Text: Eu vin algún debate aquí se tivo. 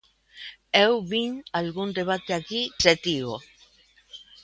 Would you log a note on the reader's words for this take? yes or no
no